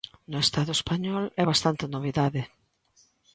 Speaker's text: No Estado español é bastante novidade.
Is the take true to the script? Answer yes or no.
yes